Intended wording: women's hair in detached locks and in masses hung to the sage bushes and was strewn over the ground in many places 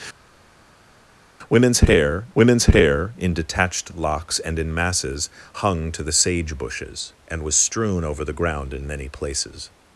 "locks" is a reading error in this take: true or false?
false